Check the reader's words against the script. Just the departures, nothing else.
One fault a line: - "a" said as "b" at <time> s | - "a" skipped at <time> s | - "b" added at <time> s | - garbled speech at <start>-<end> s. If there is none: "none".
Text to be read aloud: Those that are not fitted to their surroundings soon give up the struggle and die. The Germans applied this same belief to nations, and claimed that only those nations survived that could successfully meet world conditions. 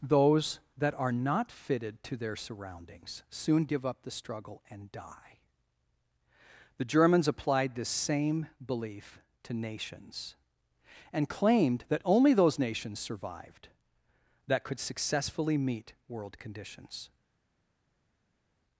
none